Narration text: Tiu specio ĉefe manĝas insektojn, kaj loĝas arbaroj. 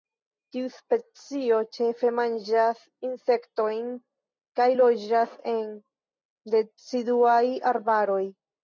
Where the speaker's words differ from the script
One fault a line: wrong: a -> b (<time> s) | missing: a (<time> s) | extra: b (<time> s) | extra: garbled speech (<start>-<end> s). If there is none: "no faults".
extra: en deciduaj (5.6 s)